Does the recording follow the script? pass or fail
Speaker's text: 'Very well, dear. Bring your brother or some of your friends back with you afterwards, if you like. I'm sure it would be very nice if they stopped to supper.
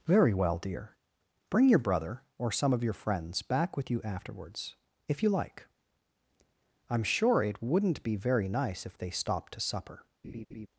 fail